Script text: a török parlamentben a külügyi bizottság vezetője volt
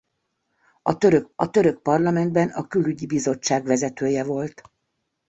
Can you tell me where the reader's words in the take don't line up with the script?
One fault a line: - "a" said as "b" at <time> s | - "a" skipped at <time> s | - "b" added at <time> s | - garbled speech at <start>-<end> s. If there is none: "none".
- "a török" added at 1.3 s